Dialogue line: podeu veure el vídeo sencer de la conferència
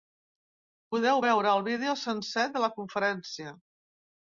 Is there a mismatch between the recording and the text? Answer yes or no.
no